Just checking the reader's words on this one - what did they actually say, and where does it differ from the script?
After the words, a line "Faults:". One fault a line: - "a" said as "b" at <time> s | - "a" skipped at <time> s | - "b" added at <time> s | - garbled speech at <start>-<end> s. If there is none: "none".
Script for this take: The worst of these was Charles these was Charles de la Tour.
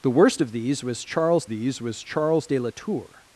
The worst of these was Charles these was Charles de la Tour.
Faults:
none